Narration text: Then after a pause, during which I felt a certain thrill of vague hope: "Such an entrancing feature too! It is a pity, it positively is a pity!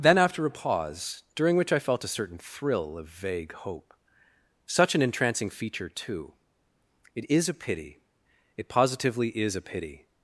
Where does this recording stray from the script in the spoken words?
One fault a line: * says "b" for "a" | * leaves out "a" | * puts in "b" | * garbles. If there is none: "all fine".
all fine